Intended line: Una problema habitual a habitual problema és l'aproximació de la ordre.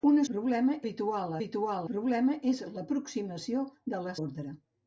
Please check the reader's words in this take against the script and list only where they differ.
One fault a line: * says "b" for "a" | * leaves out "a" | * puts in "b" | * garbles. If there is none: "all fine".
all fine